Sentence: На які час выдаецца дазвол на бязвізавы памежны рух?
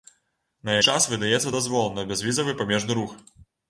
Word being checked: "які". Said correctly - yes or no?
no